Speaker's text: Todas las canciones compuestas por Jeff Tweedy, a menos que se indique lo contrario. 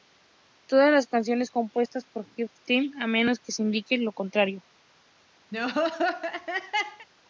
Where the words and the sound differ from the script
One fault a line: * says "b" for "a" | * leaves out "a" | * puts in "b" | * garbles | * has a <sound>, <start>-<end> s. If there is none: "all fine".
* has a laugh, 5.5-7.1 s